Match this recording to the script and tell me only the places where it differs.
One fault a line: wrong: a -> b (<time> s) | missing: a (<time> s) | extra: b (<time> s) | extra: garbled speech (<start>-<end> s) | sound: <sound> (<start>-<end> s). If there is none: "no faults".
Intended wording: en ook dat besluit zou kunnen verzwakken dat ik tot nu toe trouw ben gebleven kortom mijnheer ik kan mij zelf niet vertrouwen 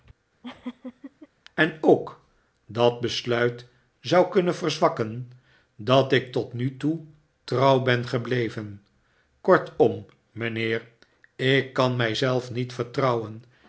sound: laugh (0.4-1.3 s)